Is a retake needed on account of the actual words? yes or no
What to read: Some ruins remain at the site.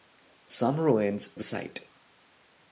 yes